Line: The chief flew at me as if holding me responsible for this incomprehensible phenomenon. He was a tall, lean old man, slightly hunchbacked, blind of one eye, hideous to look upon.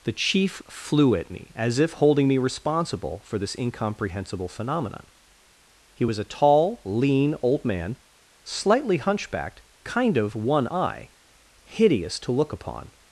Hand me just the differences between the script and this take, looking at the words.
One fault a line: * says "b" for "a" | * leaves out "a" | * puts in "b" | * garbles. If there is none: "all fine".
* says "kind" for "blind"